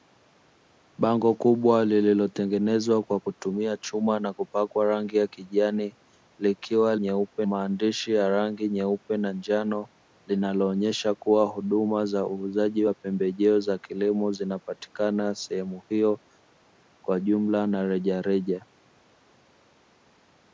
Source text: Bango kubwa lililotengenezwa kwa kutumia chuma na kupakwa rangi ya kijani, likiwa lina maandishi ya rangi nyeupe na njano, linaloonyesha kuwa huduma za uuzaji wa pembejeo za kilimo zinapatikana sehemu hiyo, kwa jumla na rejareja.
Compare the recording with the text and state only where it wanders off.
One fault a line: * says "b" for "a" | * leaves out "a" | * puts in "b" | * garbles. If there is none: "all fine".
* says "nyeupe" for "lina"